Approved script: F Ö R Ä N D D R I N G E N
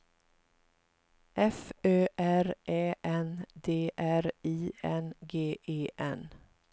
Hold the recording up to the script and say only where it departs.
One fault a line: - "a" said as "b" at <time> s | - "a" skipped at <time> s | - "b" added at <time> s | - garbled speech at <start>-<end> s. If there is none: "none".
- "D" skipped at 3.9 s